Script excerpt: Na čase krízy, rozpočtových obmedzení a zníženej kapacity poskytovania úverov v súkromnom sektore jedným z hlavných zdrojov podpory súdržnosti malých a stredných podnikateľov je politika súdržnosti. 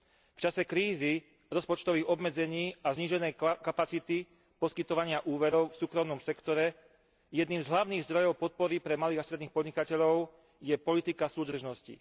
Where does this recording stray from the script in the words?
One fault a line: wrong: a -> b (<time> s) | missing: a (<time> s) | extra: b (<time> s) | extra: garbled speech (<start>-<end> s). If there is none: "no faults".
wrong: Na -> V (0.3 s)
wrong: súdržnosti -> pre (8.8 s)